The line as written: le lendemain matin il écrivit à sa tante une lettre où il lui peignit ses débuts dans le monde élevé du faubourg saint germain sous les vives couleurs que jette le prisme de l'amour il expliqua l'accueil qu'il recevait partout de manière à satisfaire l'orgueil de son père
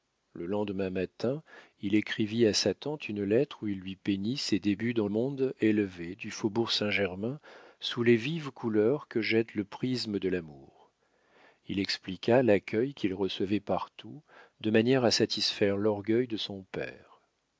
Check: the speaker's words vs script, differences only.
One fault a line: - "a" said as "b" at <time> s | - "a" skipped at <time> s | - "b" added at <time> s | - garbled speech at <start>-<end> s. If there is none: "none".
- "le" skipped at 5.1 s